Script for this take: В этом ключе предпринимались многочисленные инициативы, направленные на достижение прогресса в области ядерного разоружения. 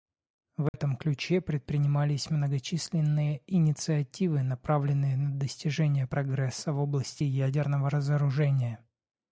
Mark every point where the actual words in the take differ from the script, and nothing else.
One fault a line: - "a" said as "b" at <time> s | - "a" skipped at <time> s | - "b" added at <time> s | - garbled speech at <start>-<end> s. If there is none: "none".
none